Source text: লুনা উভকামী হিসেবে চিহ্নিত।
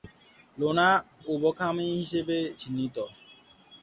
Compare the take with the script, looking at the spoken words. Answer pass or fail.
pass